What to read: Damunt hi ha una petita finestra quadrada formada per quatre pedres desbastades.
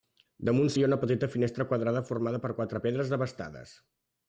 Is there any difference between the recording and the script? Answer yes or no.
no